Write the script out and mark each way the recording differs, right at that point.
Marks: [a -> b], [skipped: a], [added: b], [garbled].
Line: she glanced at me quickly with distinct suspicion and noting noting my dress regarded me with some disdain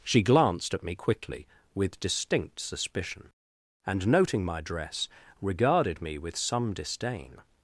she glanced at me quickly with distinct suspicion and noting [skipped: noting] my dress regarded me with some disdain